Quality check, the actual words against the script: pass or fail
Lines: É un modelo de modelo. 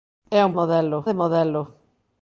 pass